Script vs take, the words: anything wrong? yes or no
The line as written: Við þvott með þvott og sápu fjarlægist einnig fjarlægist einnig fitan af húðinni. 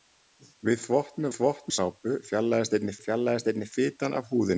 no